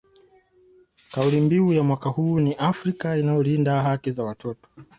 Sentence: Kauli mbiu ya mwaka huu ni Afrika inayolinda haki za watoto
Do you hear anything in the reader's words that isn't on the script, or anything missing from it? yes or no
no